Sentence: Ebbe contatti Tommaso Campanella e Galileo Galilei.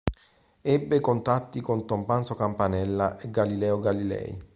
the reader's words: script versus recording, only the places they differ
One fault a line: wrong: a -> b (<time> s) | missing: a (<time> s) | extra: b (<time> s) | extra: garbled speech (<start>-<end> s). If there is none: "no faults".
extra: con (1.6 s)